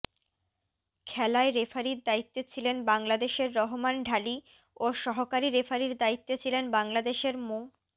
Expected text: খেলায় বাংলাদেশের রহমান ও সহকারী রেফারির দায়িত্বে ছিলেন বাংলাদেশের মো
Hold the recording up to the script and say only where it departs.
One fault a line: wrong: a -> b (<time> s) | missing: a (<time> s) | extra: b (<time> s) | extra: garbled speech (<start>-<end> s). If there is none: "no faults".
extra: রেফারির দায়িত্বে ছিলেন (1.5 s)
extra: ঢালি (4.0 s)